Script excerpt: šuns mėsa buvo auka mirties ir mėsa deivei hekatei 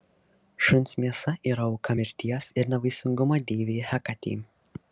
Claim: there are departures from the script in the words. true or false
true